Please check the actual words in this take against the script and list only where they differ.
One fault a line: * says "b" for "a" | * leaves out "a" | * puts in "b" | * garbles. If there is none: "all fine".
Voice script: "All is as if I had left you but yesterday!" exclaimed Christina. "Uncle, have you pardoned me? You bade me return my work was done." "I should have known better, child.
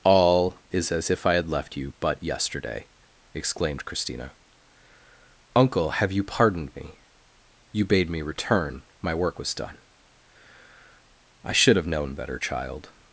all fine